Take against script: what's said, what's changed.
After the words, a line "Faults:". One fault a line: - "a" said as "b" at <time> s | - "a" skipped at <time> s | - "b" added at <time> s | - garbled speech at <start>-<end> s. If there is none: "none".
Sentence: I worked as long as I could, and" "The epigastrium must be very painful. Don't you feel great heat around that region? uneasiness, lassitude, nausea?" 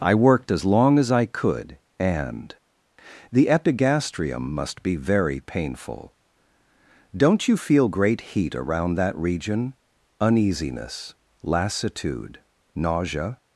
I worked as long as I could, and" "The epigastrium must be very painful. Don't you feel great heat around that region? uneasiness, lassitude, nausea?"
Faults:
none